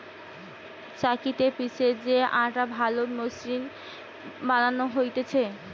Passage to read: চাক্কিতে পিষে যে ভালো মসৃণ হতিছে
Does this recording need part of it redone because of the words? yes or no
yes